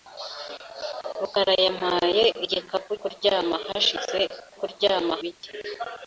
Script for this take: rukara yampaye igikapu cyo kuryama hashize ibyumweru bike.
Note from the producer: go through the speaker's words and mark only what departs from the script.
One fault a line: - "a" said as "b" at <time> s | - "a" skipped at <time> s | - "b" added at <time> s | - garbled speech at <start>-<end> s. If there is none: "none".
- "cyo" skipped at 2.9 s
- "ibyumweru" said as "kuryama" at 4.6 s